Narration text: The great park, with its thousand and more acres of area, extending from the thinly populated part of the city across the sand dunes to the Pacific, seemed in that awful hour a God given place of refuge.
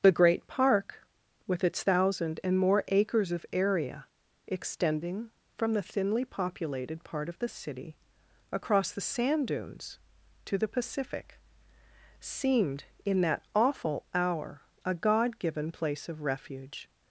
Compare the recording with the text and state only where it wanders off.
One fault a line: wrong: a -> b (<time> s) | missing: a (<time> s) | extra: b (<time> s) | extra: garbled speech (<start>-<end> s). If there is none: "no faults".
no faults